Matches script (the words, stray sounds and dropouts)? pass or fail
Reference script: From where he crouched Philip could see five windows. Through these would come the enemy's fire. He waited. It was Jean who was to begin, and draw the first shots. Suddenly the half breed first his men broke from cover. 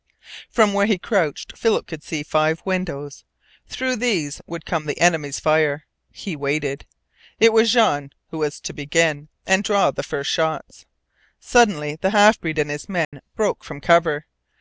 fail